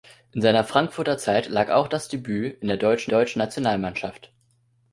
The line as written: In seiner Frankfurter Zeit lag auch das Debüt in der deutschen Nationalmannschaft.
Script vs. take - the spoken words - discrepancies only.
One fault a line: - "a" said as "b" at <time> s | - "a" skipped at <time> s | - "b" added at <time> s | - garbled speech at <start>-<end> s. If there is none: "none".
- "deutschen" added at 3.1 s